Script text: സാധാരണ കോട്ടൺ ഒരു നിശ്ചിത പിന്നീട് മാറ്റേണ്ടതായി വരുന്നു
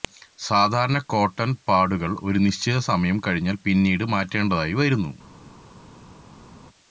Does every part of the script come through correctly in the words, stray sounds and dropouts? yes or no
no